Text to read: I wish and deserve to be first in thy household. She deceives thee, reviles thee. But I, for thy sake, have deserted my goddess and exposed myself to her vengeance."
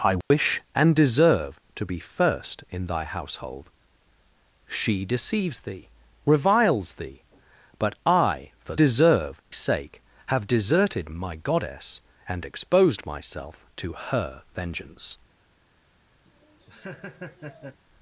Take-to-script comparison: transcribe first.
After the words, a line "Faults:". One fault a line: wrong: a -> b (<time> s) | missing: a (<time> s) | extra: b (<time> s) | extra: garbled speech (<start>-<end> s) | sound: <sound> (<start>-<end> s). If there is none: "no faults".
I wish and deserve to be first in thy household. She deceives thee, reviles thee. But I, for deserve sake, have deserted my goddess and exposed myself to her vengeance."
Faults:
sound: dropout (0.2-0.3 s)
wrong: thy -> deserve (8.8 s)
sound: laugh (16.3-17.8 s)